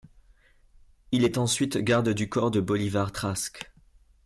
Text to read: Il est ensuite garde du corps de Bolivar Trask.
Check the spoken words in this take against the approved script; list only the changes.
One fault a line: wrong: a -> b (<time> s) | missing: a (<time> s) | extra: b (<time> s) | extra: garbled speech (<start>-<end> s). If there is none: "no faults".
no faults